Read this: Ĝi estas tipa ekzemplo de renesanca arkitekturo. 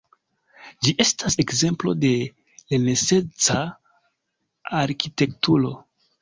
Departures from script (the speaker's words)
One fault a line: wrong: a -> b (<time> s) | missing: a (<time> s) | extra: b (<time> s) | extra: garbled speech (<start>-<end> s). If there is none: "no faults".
missing: tipa (1.4 s)